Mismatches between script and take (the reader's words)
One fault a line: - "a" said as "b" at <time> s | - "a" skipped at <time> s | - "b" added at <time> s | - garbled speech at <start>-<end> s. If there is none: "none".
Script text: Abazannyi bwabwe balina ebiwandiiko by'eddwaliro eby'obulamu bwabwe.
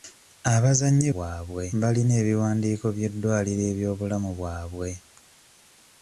none